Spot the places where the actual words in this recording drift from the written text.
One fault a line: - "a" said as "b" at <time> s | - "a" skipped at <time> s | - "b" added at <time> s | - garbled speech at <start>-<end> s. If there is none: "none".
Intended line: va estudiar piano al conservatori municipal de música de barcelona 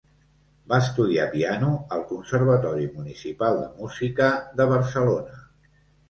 none